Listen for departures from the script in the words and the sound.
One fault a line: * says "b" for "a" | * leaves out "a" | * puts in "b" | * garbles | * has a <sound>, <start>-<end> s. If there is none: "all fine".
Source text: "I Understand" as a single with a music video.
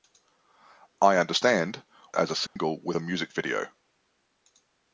* has a dropout, 2.5-2.6 s